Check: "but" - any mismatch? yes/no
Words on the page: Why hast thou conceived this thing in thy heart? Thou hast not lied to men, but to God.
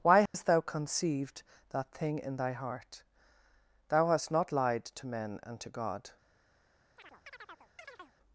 yes